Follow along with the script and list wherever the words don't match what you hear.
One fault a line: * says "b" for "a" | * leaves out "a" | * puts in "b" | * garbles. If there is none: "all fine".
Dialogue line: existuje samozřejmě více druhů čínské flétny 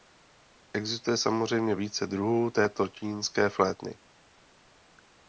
* puts in "této"